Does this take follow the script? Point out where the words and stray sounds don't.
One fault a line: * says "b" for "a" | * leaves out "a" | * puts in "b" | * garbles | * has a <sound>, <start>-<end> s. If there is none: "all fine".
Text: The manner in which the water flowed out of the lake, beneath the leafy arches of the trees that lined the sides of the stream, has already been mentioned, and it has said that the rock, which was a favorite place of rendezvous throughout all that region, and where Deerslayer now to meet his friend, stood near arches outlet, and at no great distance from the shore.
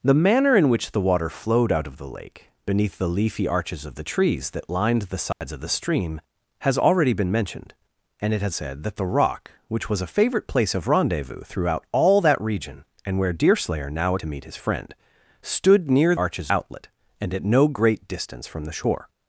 * has a dropout, 5.3-5.4 s